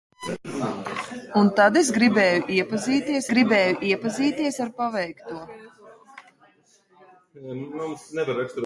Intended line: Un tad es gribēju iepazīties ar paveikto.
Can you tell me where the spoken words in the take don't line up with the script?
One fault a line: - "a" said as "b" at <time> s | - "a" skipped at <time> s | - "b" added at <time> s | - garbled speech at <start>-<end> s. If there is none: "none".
- "gribēju iepazīties" added at 3.3 s